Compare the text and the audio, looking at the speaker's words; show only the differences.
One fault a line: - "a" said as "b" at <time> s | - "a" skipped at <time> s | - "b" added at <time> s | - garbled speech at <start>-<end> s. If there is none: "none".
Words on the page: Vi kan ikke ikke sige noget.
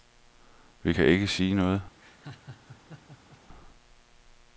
- "ikke" skipped at 1.3 s